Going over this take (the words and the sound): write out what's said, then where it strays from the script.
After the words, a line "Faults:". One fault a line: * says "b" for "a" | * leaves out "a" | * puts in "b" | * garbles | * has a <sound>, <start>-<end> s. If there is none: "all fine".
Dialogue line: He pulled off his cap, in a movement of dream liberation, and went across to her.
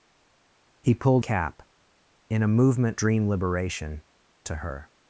He pulled cap, in a movement dream liberation, to her.
Faults:
* leaves out "off his"
* leaves out "of"
* leaves out "and went across"